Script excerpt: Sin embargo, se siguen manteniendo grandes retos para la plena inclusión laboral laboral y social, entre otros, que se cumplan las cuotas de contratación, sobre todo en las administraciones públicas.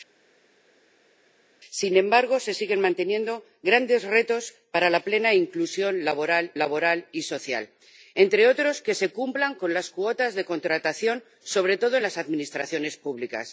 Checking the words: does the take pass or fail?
pass